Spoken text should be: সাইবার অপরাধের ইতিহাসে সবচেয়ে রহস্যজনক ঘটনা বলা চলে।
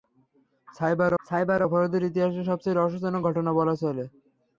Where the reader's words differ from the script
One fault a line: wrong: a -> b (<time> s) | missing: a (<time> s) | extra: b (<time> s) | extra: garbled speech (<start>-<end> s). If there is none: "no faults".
extra: সাইবার (1.2 s)